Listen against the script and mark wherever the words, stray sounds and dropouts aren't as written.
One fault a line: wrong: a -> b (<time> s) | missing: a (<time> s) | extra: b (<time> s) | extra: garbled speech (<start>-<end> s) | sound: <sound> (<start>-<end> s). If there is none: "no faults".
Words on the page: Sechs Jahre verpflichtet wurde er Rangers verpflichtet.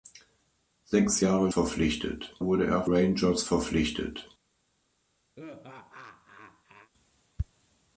sound: laugh (5.4-6.9 s)